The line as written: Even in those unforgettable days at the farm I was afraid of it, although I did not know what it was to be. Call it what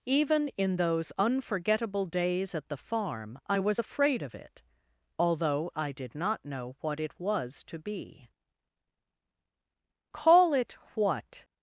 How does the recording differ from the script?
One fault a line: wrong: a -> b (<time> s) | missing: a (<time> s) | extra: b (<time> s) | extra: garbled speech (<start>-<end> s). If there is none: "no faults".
no faults